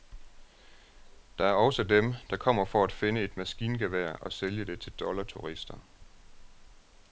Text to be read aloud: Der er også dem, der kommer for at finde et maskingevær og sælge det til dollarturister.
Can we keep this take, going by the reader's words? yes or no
yes